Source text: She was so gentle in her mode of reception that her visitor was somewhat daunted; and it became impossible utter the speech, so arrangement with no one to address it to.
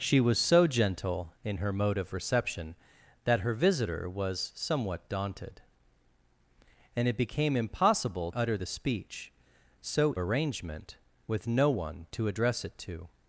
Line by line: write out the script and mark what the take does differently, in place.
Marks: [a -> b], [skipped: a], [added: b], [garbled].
She was so gentle in her mode of reception that her visitor was somewhat daunted; and it became impossible utter the speech, so arrangement with no one to address it to.